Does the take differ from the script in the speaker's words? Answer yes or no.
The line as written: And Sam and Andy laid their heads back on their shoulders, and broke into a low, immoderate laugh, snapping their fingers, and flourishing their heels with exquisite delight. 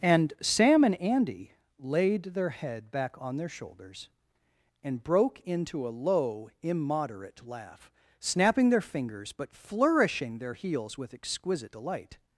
yes